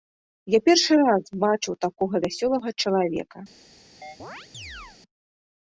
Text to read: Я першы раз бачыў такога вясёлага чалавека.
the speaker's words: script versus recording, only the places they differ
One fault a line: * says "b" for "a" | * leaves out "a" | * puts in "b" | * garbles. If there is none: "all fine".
all fine